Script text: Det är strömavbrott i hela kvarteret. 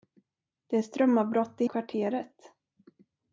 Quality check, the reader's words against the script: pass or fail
fail